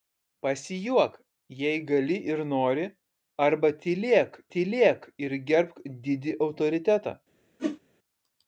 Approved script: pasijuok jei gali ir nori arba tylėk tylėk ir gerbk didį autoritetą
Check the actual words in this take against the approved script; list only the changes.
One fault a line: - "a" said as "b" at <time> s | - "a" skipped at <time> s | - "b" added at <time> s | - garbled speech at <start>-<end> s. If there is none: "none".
none